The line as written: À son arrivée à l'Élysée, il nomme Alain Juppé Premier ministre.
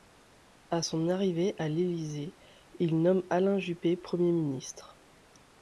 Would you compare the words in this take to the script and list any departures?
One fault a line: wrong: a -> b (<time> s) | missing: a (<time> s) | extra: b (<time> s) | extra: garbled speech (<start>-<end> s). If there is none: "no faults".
no faults